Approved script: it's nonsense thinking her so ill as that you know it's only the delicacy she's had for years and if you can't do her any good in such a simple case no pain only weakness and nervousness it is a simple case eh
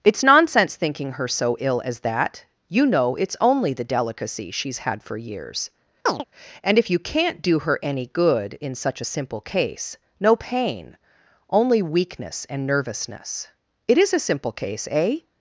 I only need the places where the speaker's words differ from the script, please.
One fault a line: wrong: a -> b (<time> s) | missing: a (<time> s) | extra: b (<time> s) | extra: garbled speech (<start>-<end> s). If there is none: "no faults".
no faults